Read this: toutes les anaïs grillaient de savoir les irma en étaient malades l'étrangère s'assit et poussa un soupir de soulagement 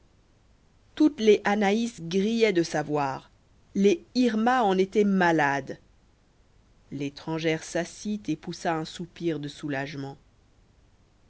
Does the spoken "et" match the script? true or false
true